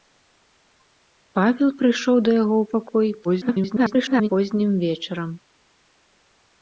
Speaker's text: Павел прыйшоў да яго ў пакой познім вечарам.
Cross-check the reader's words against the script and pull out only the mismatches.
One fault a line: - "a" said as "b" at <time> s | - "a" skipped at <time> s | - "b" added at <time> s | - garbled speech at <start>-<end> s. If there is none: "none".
- garbled speech at 3.2-4.3 s